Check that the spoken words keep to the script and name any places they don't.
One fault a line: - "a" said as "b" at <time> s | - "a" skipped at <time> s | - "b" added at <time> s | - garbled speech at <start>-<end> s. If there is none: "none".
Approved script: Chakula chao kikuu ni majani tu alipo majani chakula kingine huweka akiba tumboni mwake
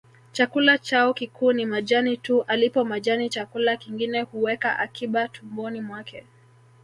none